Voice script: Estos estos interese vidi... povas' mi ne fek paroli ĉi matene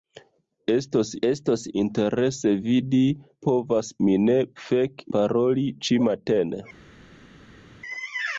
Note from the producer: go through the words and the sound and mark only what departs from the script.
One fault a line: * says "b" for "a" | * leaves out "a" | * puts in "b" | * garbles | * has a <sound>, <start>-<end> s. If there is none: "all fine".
all fine